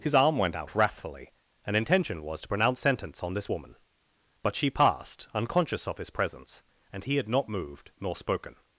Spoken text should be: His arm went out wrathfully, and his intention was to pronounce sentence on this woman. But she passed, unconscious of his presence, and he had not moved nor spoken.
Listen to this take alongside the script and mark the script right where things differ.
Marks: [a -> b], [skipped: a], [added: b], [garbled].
His arm went out wrathfully, and [skipped: his] intention was to pronounce sentence on this woman. But she passed, unconscious of his presence, and he had not moved nor spoken.